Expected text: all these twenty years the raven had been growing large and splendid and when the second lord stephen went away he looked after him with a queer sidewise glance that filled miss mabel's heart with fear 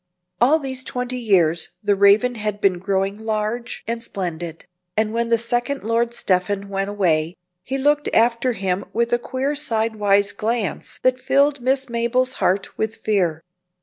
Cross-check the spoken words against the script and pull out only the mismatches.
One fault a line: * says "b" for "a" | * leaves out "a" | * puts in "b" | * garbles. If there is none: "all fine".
all fine